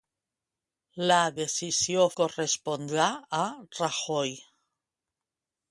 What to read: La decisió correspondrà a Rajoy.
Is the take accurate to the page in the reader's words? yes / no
yes